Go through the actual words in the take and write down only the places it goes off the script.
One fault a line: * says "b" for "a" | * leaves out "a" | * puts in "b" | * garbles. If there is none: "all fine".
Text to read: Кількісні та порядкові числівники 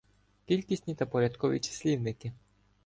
all fine